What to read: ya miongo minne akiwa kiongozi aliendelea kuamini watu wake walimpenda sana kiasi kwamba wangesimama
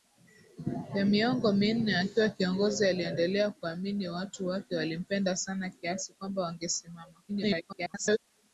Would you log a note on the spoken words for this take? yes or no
yes